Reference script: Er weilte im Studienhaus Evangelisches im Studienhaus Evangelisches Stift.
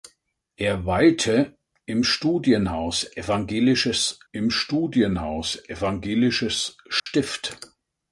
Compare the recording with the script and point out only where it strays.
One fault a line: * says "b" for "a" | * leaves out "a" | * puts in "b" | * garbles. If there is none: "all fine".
all fine